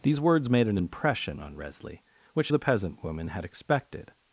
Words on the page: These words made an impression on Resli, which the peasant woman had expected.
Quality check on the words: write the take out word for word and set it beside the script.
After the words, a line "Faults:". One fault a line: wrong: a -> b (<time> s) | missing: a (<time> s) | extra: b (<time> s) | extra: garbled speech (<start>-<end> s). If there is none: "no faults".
These words made an impression on Resli, which the peasant woman had expected.
Faults:
no faults